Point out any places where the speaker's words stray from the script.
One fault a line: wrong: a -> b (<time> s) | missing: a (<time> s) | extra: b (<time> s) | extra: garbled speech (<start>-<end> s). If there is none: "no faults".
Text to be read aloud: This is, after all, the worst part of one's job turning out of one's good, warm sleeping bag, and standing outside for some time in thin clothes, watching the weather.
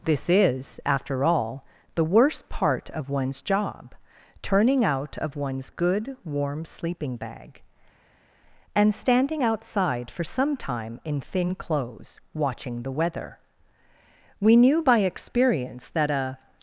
extra: We knew by experience that a (14.4 s)